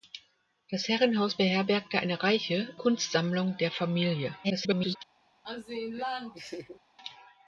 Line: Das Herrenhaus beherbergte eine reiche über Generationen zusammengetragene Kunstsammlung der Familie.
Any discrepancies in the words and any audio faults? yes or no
yes